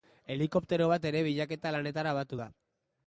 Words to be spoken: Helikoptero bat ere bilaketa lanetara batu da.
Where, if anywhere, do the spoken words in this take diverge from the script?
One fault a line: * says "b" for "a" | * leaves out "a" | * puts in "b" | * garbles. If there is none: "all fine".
all fine